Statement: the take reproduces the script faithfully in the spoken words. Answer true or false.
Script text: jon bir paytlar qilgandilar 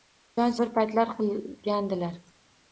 true